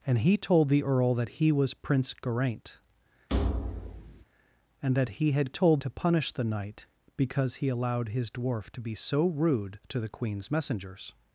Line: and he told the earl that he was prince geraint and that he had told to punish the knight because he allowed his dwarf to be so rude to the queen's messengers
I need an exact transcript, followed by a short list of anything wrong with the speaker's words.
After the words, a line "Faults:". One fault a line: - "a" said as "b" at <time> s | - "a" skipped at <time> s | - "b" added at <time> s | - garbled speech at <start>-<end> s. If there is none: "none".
and he told the earl that he was prince geraint and that he had told to punish the knight because he allowed his dwarf to be so rude to the queen's messengers
Faults:
none